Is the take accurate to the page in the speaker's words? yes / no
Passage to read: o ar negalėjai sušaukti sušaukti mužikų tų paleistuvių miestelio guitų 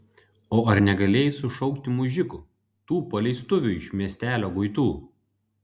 no